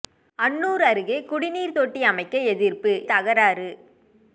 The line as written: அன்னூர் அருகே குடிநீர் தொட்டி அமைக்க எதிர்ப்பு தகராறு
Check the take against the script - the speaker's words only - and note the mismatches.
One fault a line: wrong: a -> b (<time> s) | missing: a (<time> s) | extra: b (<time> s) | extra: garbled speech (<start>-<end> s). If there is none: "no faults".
no faults